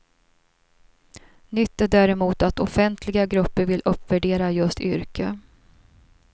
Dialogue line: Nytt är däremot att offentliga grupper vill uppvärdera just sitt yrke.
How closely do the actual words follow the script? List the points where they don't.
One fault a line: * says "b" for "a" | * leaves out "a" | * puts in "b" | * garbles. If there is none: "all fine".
* leaves out "sitt"